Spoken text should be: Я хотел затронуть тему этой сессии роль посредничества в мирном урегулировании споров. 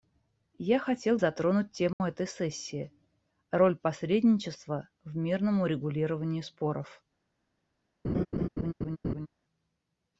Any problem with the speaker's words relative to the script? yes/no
no